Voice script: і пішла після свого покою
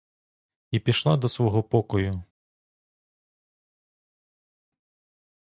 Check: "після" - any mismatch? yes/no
yes